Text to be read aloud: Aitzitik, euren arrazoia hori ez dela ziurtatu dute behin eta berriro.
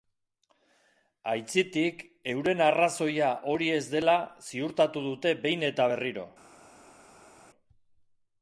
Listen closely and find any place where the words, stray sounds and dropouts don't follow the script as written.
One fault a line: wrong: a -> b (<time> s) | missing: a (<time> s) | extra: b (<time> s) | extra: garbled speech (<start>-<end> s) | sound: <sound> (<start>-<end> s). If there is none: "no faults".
no faults